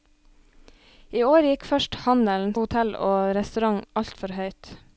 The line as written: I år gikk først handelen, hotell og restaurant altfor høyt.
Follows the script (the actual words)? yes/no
yes